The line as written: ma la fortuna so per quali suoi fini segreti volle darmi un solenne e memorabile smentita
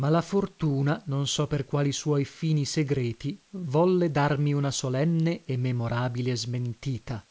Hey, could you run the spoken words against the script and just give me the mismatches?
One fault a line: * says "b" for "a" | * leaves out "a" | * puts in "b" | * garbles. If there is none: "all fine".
* puts in "non"
* says "una" for "un"